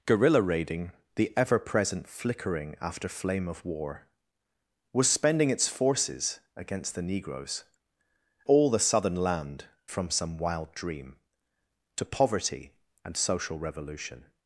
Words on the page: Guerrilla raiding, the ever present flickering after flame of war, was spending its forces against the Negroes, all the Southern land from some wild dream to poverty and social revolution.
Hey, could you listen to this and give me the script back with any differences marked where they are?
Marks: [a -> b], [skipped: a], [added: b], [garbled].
Guerrilla raiding, the ever present flickering after flame of war, was spending its forces against the Negroes, all the Southern land from some wild dream to poverty and social revolution.